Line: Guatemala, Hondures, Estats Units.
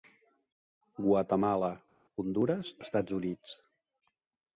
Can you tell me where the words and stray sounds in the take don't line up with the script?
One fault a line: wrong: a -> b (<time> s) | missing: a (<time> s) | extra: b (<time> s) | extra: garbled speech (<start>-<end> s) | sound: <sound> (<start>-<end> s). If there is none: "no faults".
no faults